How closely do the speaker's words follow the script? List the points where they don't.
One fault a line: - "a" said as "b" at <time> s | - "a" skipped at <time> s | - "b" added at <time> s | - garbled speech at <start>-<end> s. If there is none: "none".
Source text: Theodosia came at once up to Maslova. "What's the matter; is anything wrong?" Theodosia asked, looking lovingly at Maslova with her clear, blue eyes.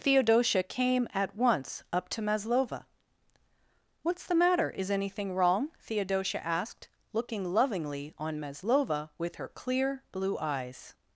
- "at" said as "on" at 8.2 s